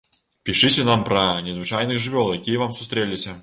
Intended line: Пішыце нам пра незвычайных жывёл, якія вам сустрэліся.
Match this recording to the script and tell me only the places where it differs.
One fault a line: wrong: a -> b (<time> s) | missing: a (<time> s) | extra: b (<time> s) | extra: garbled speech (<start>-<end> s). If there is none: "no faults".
no faults